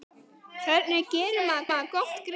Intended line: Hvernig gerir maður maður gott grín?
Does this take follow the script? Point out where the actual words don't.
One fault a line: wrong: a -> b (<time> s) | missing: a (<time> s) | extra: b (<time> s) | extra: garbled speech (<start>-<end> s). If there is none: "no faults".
no faults